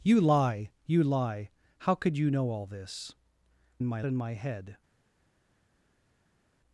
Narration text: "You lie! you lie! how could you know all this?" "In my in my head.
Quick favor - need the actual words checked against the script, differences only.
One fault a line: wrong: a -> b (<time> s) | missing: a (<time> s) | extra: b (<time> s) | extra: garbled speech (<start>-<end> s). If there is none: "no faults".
no faults